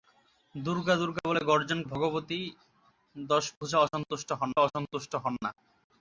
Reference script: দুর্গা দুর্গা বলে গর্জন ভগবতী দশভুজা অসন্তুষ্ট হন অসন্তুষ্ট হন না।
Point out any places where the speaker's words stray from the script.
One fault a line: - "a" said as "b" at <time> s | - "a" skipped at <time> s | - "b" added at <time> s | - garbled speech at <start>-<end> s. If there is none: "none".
none